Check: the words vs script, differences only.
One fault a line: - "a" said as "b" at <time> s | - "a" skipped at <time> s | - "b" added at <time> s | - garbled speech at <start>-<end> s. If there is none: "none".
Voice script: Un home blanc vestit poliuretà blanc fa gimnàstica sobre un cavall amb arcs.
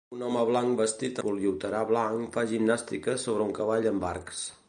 none